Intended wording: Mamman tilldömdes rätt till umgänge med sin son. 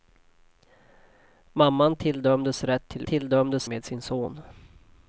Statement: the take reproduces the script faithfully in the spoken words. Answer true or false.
false